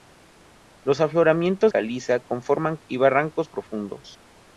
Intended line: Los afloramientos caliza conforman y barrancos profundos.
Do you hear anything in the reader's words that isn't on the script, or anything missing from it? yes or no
no